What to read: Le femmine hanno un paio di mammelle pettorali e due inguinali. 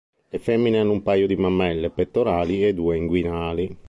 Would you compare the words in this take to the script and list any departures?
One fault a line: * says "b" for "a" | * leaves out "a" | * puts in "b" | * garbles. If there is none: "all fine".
all fine